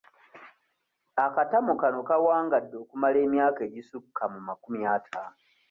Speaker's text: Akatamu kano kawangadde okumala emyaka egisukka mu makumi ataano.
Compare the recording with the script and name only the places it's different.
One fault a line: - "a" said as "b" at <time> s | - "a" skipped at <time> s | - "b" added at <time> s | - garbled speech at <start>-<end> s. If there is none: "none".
none